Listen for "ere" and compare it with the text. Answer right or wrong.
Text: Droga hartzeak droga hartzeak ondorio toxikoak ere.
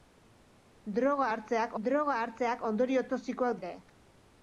right